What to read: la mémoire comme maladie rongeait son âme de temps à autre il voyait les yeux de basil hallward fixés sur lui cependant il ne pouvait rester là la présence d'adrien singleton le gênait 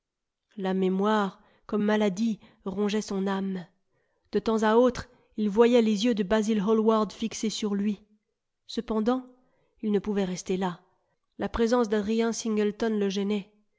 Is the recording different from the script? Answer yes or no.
no